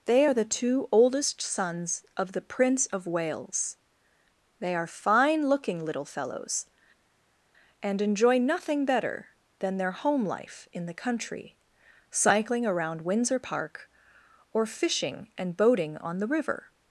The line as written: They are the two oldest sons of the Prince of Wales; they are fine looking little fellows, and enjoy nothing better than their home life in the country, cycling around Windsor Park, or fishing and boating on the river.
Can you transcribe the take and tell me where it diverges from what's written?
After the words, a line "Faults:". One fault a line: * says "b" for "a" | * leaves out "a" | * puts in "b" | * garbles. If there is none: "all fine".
They are the two oldest sons of the Prince of Wales; they are fine looking little fellows, and enjoy nothing better than their home life in the country, cycling around Windsor Park, or fishing and boating on the river.
Faults:
all fine